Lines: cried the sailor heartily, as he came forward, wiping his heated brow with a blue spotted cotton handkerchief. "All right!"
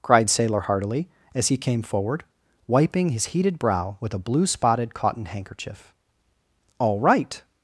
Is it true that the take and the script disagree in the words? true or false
true